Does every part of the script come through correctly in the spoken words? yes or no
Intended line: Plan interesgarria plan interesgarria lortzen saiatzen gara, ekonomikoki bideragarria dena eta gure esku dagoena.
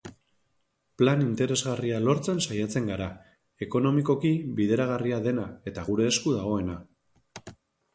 no